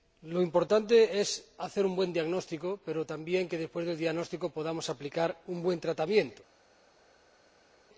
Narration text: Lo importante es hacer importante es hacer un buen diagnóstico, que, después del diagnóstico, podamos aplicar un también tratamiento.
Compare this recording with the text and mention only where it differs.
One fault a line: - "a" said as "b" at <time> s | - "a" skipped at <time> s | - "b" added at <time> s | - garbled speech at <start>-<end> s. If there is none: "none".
- "importante es hacer" skipped at 1.8 s
- "pero también" added at 2.9 s
- "también" said as "buen" at 5.6 s